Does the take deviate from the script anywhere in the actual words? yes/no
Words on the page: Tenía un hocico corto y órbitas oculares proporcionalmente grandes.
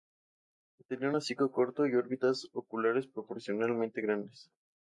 no